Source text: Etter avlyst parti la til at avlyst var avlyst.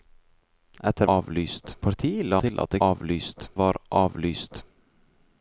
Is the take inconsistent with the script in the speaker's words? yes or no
no